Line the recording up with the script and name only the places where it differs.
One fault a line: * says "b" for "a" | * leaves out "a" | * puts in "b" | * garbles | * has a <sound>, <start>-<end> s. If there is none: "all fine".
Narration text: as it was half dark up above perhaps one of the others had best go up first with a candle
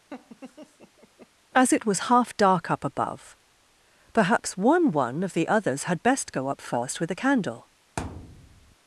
* has a laugh, 0.1-1.3 s
* puts in "one"
* has a thud, 8.0-8.8 s